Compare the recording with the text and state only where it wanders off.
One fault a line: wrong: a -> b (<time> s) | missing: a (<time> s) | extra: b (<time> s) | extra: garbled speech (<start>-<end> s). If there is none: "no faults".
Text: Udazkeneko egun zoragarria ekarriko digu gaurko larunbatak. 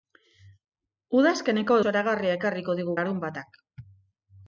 missing: egun (1.8 s)
missing: gaurko (3.0 s)